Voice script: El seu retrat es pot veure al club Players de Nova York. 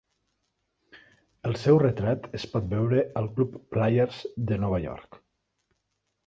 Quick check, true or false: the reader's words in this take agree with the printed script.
true